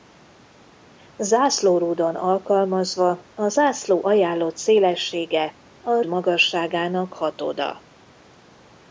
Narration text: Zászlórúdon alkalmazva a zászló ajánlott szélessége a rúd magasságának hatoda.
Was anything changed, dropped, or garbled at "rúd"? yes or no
yes